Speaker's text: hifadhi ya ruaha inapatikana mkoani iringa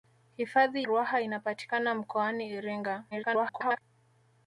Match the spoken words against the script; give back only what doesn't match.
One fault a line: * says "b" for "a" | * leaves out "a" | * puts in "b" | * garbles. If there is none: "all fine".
* leaves out "ya"
* garbles